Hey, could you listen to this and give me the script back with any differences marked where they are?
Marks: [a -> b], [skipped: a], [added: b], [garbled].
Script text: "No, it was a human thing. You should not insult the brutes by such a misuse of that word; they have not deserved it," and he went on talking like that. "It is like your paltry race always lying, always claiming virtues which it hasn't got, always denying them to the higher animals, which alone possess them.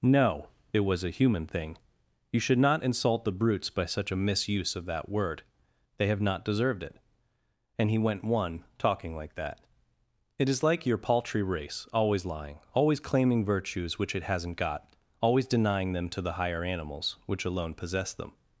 "No, it was a human thing. You should not insult the brutes by such a misuse of that word; they have not deserved it," and he went [on -> one] talking like that. "It is like your paltry race always lying, always claiming virtues which it hasn't got, always denying them to the higher animals, which alone possess them.